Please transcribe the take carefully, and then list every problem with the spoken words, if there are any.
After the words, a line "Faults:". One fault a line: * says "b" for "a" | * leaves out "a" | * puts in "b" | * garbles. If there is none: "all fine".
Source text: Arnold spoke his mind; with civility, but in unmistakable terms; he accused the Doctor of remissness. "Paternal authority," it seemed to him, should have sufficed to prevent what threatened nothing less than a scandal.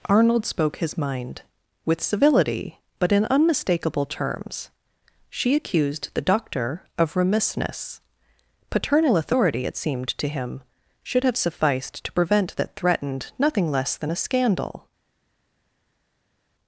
Arnold spoke his mind; with civility, but in unmistakable terms; she accused the Doctor of remissness. "Paternal authority," it seemed to him, should have sufficed to prevent that threatened nothing less than a scandal.
Faults:
* says "she" for "he"
* says "that" for "what"